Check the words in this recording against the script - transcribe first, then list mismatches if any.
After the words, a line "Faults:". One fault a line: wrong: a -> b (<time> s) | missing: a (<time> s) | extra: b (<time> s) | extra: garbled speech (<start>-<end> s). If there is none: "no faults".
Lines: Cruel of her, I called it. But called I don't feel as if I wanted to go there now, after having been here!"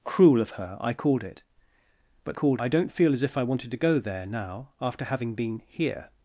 Cruel of her, I called it. But called I don't feel as if I wanted to go there now, after having been here!"
Faults:
no faults